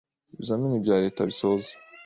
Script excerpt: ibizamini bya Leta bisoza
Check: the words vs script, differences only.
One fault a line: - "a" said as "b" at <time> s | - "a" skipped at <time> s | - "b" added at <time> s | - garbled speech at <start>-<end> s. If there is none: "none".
none